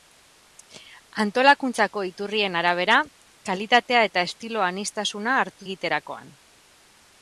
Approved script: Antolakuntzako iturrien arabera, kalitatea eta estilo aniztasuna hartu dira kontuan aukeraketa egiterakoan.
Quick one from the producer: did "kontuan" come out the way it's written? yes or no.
no